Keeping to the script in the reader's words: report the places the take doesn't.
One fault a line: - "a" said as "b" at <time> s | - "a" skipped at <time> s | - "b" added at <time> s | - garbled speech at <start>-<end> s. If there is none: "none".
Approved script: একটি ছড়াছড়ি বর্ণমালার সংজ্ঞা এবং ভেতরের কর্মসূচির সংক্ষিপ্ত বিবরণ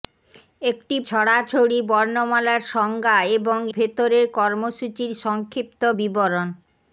none